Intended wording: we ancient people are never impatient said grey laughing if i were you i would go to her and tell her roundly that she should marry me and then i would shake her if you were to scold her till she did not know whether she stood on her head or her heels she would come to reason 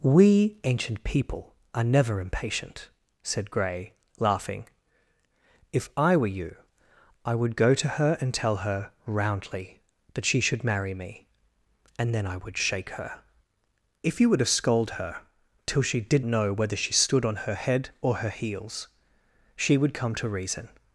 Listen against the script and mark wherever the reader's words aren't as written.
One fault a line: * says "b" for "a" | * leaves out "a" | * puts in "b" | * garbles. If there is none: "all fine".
* leaves out "not"